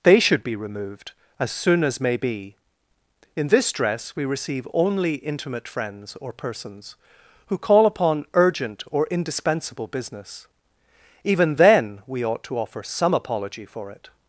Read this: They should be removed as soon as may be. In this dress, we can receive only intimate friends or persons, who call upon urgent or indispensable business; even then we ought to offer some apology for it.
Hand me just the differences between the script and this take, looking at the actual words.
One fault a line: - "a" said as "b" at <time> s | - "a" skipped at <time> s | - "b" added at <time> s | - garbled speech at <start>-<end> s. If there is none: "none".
- "can" skipped at 4.2 s